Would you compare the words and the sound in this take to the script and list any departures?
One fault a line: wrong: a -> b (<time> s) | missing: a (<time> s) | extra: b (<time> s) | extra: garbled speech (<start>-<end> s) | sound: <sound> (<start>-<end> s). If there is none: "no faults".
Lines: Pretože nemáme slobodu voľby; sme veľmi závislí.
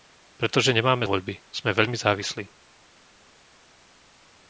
missing: slobodu (1.1 s)